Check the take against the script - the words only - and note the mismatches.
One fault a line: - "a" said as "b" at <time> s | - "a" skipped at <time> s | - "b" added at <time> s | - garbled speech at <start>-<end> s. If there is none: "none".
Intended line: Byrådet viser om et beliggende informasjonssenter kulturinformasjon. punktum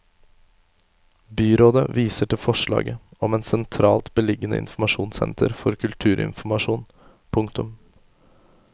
- "til forslaget" added at 2.3 s
- "sentralt" added at 3.5 s
- "for" added at 5.6 s